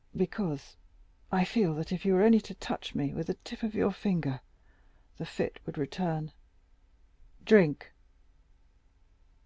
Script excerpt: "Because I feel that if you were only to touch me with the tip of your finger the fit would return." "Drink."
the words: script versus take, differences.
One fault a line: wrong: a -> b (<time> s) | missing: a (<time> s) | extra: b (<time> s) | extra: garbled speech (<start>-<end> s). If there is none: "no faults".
no faults